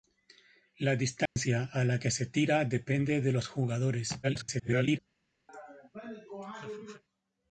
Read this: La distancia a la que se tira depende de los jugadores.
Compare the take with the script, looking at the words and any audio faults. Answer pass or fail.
fail